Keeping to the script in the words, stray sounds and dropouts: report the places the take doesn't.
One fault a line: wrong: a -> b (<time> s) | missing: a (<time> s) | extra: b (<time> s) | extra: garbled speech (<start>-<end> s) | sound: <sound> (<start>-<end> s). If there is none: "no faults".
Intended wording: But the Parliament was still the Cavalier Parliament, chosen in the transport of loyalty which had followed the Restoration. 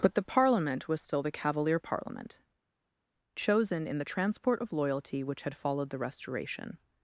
no faults